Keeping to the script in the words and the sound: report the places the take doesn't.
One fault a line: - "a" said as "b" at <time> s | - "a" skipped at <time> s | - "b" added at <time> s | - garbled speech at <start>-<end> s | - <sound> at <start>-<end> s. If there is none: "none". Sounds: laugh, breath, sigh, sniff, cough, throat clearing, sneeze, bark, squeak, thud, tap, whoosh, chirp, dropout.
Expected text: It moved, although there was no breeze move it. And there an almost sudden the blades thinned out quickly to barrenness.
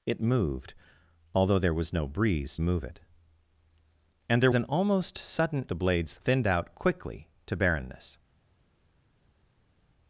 none